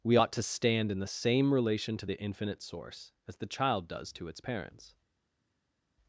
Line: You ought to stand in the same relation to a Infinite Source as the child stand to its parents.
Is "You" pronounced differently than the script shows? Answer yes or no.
yes